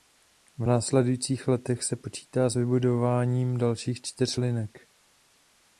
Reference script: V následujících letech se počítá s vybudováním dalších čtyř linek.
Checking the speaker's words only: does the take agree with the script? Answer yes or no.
yes